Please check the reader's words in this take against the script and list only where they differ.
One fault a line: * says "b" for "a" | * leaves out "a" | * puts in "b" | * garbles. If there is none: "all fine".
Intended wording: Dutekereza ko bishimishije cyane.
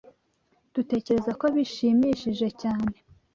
all fine